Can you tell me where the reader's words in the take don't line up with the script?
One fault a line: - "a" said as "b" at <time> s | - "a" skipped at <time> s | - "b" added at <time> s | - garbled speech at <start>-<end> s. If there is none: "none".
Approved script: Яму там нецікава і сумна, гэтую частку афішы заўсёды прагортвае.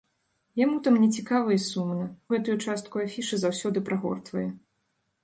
none